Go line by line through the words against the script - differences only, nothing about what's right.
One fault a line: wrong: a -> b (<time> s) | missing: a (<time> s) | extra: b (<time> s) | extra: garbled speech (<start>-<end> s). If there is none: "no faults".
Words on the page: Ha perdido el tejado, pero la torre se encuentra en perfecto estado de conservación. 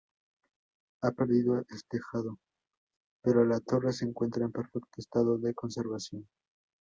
no faults